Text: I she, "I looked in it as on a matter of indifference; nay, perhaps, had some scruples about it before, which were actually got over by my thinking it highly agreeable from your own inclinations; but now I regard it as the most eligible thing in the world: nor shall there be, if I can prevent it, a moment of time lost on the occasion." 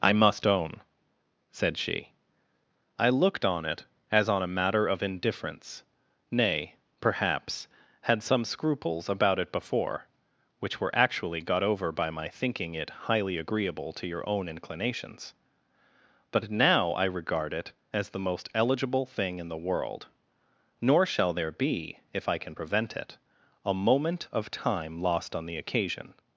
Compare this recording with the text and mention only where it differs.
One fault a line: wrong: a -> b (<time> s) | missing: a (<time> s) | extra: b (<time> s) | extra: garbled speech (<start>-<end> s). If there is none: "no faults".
extra: must own said (0.1 s)
wrong: in -> on (3.5 s)
wrong: from -> to (13.9 s)